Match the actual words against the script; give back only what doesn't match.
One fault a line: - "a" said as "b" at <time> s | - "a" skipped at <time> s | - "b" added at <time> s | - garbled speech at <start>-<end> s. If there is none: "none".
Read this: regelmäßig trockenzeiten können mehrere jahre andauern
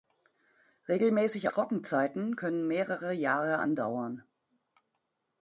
none